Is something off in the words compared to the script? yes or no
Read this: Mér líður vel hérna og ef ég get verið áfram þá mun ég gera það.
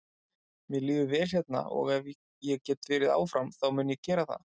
no